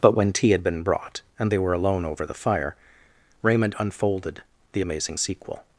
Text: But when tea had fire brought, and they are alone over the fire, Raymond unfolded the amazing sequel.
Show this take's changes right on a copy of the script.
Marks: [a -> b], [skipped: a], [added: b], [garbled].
But when tea had [fire -> been] brought, and they [are -> were] alone over the fire, Raymond unfolded the amazing sequel.